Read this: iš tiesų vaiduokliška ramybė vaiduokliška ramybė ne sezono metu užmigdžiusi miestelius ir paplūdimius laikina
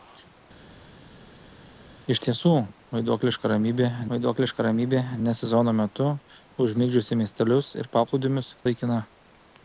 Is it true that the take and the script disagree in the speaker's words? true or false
false